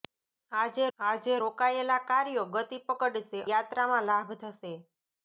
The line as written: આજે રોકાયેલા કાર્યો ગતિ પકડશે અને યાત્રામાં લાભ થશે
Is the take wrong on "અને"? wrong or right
wrong